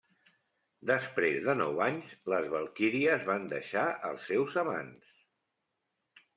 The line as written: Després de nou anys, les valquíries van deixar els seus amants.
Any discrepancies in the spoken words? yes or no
no